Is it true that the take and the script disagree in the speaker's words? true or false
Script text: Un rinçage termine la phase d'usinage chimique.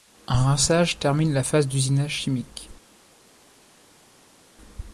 false